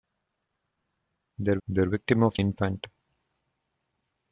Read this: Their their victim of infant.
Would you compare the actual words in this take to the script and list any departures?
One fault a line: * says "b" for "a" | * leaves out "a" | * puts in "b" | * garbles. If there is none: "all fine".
all fine